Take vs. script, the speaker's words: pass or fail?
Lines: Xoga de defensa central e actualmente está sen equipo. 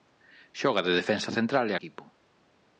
fail